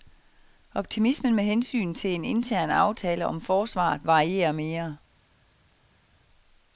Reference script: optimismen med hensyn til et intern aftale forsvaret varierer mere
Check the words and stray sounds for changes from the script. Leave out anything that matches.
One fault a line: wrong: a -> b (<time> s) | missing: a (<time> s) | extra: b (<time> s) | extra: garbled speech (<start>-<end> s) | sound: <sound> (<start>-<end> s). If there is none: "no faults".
wrong: et -> en (2.1 s)
extra: om (3.2 s)